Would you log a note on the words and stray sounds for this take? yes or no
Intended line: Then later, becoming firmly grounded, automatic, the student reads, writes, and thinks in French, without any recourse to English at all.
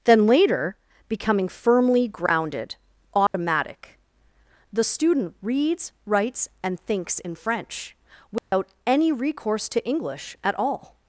yes